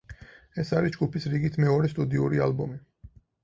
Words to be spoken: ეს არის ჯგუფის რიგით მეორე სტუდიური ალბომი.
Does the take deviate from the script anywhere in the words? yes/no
no